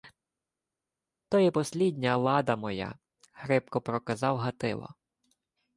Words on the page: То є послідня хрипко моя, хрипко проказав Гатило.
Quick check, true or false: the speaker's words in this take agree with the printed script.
false